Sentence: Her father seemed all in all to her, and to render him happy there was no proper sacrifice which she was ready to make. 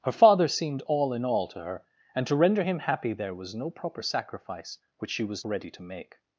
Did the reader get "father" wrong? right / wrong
right